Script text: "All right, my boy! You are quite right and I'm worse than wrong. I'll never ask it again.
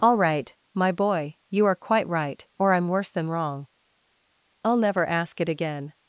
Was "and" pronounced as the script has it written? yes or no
no